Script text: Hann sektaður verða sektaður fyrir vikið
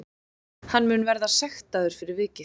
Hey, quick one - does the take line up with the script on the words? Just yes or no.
no